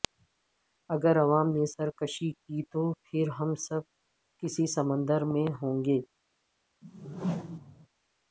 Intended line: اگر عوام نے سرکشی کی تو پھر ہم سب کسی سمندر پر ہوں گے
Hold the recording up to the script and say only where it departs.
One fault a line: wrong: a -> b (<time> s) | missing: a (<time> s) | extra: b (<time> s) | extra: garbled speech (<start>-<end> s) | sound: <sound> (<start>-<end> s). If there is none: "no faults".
wrong: پر -> میں (5.2 s)
sound: whoosh (6.8-7.9 s)